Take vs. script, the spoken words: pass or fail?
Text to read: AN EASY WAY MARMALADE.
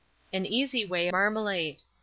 pass